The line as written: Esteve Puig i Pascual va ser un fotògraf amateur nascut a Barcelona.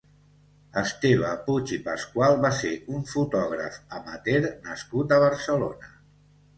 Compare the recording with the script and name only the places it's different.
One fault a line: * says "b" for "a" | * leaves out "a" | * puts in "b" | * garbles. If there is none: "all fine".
all fine